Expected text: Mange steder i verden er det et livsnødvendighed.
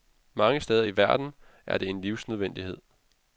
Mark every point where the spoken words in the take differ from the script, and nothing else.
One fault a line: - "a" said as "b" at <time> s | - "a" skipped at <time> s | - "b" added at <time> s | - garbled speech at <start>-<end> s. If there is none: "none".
- "et" said as "en" at 1.9 s